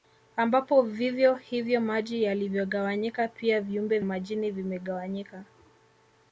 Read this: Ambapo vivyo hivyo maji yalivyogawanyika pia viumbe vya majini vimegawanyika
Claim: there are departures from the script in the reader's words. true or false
true